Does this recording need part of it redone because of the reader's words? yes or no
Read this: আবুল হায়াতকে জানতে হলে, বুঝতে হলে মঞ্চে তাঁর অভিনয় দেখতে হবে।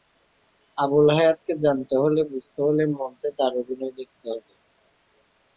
no